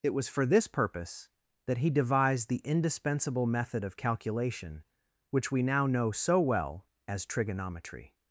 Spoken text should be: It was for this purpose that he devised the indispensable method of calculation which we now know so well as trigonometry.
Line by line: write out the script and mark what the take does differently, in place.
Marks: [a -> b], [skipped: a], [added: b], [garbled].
It was for this purpose that he devised the indispensable method of calculation which we now know so well as trigonometry.